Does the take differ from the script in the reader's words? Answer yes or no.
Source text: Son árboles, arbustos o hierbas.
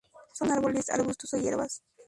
no